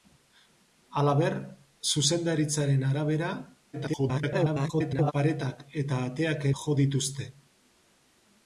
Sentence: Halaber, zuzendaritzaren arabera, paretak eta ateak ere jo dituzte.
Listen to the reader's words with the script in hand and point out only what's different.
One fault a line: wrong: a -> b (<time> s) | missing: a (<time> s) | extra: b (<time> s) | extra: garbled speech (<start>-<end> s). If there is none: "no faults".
extra: garbled speech (3.7-5.1 s)
missing: ere (6.5 s)